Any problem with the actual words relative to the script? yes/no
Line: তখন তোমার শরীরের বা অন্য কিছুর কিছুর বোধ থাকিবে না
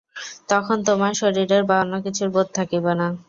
yes